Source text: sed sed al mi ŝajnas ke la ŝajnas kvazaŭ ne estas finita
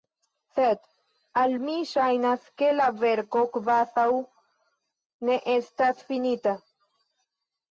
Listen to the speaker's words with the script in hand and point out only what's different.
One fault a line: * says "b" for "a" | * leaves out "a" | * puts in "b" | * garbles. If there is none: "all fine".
* leaves out "sed"
* says "verko" for "ŝajnas"